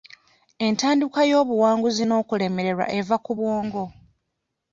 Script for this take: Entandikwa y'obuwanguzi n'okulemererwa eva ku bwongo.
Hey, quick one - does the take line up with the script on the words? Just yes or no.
yes